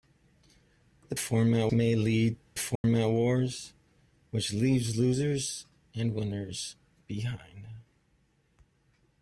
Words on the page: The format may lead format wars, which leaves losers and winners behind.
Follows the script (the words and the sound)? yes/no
no